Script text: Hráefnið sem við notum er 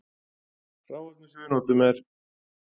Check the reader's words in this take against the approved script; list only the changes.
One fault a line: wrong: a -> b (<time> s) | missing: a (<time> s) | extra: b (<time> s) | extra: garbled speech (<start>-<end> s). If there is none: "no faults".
no faults